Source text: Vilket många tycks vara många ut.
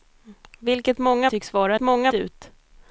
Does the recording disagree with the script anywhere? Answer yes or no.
no